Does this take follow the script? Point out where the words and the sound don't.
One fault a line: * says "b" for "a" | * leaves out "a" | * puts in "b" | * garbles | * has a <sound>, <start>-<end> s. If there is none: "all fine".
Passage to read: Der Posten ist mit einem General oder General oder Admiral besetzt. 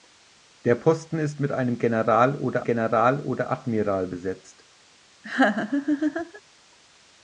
* has a laugh, 5.2-6.4 s